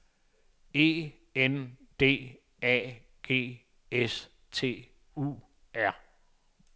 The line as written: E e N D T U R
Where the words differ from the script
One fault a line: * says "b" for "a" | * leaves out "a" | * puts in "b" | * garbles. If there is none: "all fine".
* leaves out "e"
* puts in "A G S"